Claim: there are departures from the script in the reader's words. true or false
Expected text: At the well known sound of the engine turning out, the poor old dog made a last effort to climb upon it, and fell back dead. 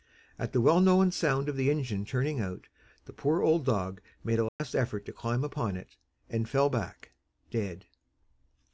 false